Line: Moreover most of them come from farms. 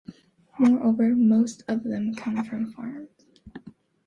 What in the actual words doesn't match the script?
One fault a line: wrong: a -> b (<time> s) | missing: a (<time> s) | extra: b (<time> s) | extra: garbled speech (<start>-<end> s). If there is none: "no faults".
no faults